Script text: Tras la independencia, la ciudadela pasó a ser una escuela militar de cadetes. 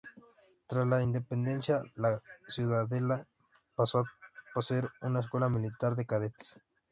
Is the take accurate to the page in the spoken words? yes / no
yes